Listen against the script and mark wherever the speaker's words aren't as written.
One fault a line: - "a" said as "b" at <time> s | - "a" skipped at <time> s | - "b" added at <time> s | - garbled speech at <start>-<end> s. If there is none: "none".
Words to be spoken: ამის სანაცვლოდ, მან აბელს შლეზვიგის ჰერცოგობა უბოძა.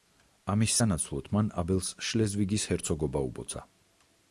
none